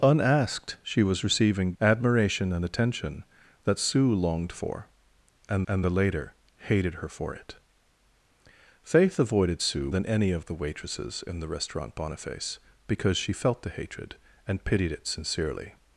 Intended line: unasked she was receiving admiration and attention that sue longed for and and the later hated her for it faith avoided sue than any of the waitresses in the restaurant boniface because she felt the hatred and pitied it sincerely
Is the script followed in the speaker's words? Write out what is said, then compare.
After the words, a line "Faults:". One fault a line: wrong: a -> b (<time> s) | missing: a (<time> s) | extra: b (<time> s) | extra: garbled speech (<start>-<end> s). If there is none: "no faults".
unasked she was receiving admiration and attention that sue longed for and and the later hated her for it faith avoided sue than any of the waitresses in the restaurant boniface because she felt the hatred and pitied it sincerely
Faults:
no faults